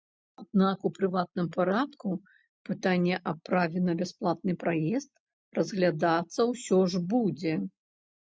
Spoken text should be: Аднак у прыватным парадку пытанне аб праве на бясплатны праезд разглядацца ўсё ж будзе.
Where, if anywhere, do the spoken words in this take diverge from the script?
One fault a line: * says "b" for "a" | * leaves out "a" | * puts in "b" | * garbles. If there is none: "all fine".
all fine